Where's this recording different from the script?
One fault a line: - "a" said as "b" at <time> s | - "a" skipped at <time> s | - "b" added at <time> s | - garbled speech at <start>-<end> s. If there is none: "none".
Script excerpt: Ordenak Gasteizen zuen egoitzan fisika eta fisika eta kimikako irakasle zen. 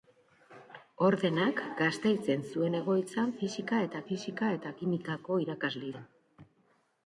none